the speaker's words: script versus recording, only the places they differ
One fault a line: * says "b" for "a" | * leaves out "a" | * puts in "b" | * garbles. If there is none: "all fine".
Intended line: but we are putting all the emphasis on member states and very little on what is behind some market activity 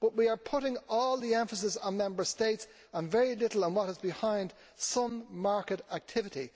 all fine